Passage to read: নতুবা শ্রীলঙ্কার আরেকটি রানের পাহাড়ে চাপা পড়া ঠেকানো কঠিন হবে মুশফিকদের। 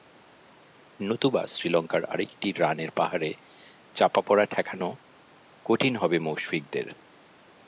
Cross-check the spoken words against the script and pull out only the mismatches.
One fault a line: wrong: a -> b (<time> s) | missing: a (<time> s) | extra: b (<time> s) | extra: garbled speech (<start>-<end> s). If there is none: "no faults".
no faults